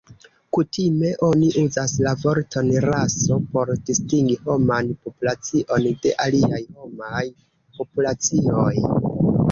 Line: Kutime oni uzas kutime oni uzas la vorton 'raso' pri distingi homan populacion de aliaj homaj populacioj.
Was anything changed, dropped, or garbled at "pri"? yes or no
yes